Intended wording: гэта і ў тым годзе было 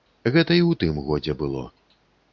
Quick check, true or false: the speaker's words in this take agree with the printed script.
true